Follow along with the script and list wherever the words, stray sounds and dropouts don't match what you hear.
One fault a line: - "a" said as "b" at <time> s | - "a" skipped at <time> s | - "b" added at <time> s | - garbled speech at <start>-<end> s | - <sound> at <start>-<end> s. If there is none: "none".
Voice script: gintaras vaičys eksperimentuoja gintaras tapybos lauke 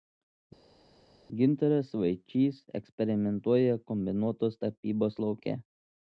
- "gintaras" said as "kombinuotos" at 3.9 s